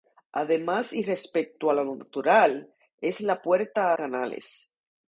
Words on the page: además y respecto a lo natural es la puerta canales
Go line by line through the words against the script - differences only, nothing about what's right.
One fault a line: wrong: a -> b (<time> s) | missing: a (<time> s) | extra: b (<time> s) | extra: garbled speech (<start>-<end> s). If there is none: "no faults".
no faults